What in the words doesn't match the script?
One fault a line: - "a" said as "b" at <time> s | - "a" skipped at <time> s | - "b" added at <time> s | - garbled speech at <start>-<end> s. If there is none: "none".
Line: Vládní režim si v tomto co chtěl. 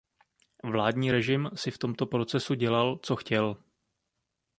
- "procesu dělal" added at 2.1 s